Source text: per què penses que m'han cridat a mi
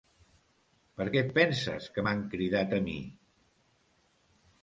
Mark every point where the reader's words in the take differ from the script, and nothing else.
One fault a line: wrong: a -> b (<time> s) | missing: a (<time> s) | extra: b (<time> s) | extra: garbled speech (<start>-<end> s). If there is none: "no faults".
extra: et (1.2 s)